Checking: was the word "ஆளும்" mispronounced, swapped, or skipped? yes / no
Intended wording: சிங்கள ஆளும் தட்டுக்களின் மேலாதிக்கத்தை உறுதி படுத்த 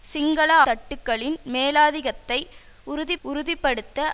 yes